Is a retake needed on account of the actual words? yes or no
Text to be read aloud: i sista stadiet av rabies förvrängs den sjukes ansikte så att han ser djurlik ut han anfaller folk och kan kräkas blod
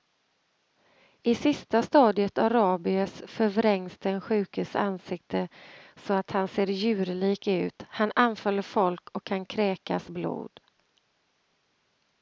no